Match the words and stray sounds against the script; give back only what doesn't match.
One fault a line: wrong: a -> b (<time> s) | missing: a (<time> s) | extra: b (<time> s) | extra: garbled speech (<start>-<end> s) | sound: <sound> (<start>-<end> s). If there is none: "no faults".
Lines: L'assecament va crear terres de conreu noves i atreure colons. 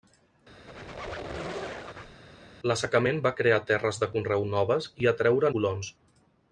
sound: squeak (0.7-2.2 s)